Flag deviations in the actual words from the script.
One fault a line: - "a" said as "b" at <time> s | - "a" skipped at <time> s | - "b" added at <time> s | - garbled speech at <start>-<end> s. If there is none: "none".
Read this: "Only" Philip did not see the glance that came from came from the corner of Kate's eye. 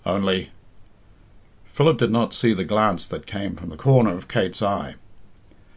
- "came from" skipped at 3.7 s